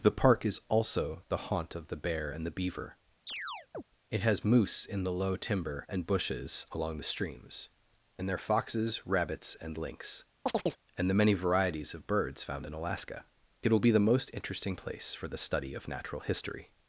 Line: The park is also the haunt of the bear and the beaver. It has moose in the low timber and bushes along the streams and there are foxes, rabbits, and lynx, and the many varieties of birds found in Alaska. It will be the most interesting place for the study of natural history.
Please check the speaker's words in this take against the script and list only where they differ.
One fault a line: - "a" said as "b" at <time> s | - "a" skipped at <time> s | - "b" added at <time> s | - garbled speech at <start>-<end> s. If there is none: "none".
none